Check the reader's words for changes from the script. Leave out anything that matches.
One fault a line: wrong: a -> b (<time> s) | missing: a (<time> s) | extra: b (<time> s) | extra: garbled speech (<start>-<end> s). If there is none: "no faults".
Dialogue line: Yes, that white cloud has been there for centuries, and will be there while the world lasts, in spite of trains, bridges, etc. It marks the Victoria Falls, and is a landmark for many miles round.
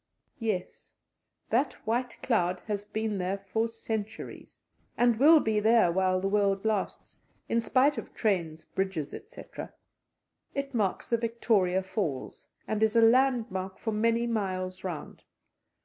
no faults